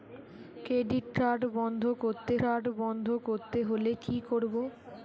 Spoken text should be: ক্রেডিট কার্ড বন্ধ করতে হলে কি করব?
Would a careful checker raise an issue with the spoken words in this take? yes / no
yes